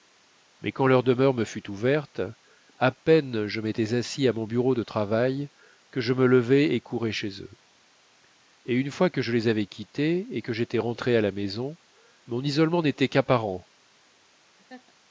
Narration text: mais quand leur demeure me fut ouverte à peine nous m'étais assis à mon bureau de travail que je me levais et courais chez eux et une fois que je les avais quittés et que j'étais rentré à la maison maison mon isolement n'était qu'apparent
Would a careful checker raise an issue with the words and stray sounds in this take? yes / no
yes